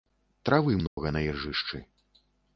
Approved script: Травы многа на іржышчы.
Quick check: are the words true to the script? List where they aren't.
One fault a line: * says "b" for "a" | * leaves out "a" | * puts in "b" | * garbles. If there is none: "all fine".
all fine